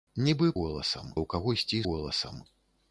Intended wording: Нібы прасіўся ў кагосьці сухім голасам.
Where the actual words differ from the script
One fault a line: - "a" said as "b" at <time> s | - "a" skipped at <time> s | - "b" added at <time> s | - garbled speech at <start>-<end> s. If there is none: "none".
- "прасіўся" said as "голасам" at 0.6 s
- "сухім" skipped at 1.8 s